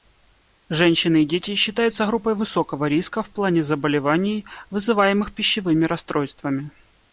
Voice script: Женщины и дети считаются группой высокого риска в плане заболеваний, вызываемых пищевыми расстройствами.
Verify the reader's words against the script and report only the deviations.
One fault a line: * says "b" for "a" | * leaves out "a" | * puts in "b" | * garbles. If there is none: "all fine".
all fine